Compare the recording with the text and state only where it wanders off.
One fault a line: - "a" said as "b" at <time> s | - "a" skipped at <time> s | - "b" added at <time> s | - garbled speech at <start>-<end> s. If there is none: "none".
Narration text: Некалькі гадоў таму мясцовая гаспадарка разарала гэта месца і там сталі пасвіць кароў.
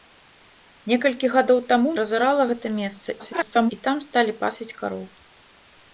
- "мясцовая гаспадарка" skipped at 1.9 s
- garbled speech at 3.2-3.7 s